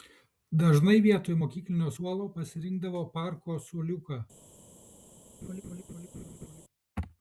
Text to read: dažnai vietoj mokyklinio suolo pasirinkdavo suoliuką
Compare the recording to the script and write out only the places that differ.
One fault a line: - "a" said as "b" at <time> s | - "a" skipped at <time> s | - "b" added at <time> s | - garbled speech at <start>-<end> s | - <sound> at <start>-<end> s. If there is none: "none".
- "parko" added at 3.2 s
- laugh at 5.4-6.6 s